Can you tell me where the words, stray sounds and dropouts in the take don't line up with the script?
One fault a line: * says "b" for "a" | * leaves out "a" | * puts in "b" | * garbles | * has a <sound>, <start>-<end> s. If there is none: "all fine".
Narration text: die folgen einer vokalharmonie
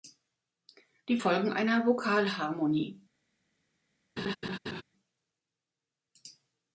* has a laugh, 4.2-4.8 s